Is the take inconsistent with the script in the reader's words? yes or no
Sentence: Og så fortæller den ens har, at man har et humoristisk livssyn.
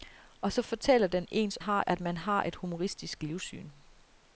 no